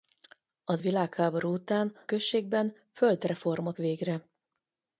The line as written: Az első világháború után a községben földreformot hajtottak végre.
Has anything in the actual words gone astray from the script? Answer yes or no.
yes